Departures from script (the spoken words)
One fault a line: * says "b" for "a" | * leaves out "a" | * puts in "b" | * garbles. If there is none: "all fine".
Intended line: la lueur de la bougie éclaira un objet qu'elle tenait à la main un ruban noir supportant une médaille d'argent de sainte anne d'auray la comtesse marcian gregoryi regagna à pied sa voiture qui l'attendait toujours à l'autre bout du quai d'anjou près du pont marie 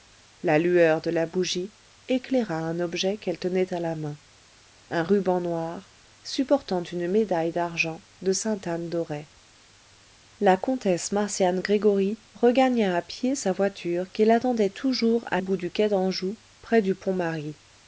* leaves out "l'autre"